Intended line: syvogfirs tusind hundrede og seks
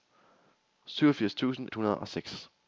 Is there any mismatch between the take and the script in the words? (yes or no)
no